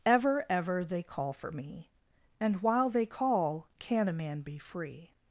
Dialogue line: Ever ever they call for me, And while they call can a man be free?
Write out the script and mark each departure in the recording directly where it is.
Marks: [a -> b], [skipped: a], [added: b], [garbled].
Ever ever they call for me, And while they call can a man be free?